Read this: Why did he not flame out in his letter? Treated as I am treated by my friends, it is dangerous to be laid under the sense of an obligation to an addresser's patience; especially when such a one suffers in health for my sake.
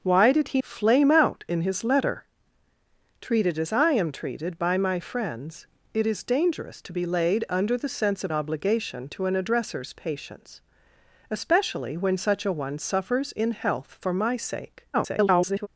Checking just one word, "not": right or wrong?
wrong